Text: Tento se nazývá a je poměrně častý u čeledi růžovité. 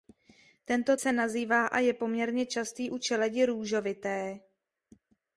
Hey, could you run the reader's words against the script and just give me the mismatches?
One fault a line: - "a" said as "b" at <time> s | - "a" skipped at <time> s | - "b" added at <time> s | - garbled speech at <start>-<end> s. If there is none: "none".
none